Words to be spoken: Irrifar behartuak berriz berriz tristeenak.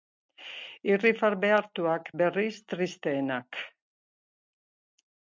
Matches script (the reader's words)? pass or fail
fail